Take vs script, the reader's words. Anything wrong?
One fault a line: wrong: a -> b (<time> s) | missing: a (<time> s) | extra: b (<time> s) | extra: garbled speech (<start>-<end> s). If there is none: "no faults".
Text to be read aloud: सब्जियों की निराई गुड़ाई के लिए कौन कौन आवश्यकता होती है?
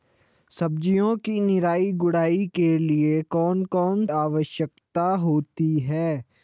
no faults